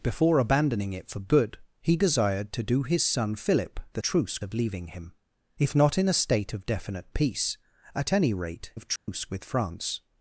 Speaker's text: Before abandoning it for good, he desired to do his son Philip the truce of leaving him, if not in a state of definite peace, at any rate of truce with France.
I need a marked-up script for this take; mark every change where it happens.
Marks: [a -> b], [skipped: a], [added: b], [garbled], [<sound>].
Before abandoning it for good, he desired to do his son Philip the truce of leaving him, if not in a state of definite peace, at any rate of truce [dropout] with France.